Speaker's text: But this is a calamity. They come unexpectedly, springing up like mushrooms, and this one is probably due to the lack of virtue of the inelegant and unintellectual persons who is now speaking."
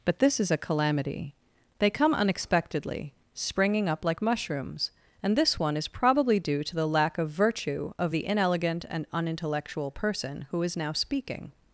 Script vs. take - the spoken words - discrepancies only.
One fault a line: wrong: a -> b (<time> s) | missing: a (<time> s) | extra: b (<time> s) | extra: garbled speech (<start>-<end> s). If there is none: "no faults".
wrong: persons -> person (9.9 s)